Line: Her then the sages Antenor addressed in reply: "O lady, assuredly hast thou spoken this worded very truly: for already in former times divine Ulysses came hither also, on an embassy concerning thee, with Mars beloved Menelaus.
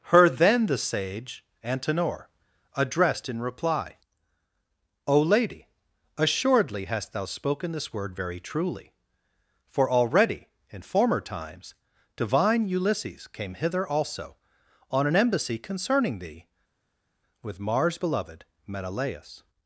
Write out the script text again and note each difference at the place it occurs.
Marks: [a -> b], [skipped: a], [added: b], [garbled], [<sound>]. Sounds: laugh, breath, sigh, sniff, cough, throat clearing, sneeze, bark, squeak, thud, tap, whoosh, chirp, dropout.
Her then the [sages -> sage] Antenor addressed in reply: "O lady, assuredly hast thou spoken this [worded -> word] very truly: for already in former times divine Ulysses came hither also, on an embassy concerning thee, with Mars beloved Menelaus.